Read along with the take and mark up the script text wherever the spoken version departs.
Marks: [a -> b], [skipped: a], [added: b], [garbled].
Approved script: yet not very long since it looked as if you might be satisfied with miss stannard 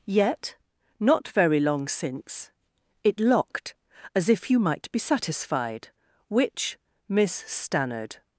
yet not very long since it [looked -> locked] as if you might be satisfied [with -> which] miss stannard